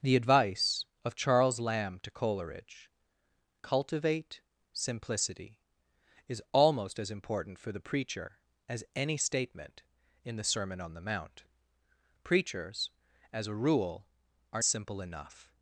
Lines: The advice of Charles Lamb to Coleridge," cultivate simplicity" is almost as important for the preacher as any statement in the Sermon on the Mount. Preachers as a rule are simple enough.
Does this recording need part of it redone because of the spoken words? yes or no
no